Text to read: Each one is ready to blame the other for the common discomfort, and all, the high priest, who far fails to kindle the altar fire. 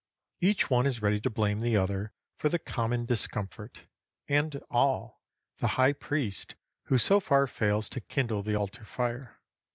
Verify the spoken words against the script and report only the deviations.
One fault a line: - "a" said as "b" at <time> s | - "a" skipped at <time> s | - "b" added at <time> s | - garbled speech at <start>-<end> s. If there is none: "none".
- "so" added at 7.0 s